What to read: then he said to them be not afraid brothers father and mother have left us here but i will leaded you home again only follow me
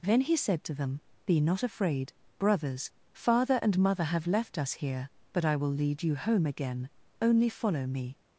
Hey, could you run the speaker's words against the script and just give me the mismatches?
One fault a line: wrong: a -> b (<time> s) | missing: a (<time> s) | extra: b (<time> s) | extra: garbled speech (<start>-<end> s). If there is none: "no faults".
wrong: leaded -> lead (5.7 s)